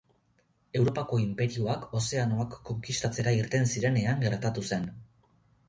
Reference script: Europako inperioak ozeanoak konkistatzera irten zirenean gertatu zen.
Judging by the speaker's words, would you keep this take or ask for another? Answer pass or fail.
pass